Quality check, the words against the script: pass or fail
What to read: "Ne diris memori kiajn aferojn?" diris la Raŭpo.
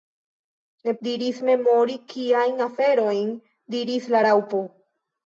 pass